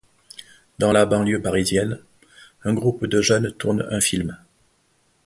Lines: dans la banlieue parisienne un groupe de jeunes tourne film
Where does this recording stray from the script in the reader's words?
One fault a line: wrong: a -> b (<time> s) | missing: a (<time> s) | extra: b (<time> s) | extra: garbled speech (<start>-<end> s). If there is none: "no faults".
extra: un (3.9 s)